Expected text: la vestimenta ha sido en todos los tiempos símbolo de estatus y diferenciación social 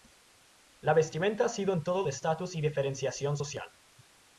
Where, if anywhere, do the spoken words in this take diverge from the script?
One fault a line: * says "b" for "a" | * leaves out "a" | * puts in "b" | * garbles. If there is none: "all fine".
* leaves out "los tiempos símbolo"